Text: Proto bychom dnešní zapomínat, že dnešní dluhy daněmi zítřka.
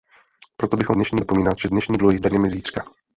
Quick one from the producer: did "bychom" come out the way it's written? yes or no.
yes